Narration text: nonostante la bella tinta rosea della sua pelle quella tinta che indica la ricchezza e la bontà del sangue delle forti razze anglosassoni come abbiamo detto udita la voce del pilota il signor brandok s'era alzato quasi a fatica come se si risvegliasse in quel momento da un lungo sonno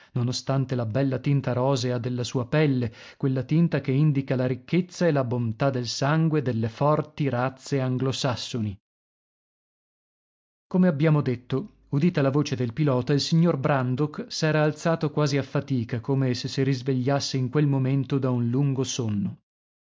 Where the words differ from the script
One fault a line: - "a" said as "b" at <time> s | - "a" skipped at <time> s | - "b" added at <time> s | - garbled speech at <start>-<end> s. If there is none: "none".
none